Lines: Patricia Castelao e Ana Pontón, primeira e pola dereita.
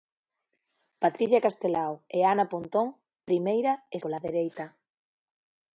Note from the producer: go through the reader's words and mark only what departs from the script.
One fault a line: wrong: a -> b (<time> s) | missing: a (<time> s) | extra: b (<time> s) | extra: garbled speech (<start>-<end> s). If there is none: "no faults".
no faults